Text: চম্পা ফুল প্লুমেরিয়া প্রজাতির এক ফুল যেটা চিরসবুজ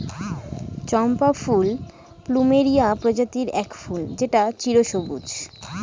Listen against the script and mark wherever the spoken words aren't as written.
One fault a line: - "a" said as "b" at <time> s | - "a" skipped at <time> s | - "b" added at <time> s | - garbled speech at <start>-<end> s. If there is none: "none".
none